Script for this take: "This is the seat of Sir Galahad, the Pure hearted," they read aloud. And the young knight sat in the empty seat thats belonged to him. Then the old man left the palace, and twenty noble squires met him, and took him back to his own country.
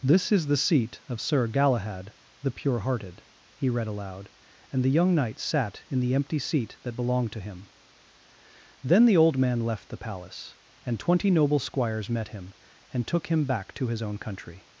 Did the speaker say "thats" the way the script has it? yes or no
no